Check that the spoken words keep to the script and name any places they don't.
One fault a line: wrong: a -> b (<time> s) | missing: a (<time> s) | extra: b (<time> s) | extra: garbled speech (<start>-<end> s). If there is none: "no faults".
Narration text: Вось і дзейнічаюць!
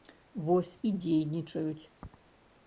no faults